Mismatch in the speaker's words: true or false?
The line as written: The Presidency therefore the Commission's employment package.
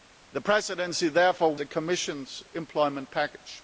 false